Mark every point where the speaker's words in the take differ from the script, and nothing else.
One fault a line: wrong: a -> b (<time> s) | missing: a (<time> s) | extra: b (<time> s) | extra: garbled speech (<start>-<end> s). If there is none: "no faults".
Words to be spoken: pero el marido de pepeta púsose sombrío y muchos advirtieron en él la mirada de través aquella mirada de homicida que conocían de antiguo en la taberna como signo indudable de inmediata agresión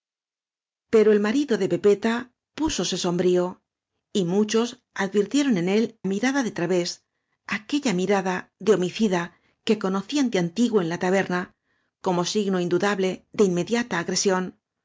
missing: la (6.0 s)